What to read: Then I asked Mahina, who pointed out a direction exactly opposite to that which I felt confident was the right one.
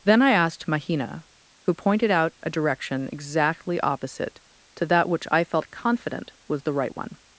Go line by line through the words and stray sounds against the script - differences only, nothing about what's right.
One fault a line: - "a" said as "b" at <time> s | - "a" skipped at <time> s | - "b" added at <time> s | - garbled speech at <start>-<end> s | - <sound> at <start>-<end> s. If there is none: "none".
none